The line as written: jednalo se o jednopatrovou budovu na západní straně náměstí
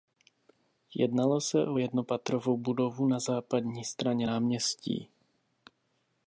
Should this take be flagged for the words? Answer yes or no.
no